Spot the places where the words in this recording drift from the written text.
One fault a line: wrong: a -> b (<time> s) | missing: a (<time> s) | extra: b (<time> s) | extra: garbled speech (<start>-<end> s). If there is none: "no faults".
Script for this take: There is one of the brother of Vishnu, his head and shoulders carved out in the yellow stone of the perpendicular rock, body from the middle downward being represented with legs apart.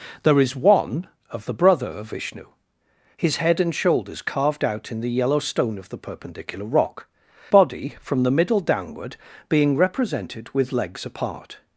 no faults